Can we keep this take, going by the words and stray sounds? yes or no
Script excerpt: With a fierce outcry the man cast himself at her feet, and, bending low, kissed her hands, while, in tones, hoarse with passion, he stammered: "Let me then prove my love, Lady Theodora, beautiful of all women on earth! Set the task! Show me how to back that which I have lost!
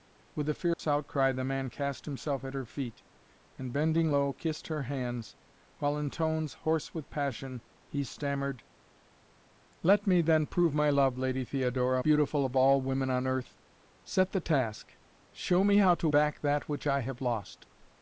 no